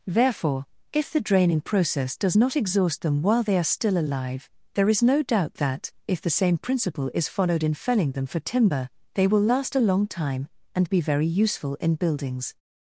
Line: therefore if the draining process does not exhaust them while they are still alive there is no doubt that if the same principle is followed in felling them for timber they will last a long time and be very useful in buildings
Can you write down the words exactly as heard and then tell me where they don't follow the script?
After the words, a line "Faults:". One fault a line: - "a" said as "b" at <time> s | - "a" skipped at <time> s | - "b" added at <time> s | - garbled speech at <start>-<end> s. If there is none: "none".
therefore if the draining process does not exhaust them while they are still alive there is no doubt that if the same principle is followed in felling them for timber they will last a long time and be very useful in buildings
Faults:
none